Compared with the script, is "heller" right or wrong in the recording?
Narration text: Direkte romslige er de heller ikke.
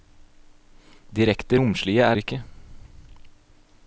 wrong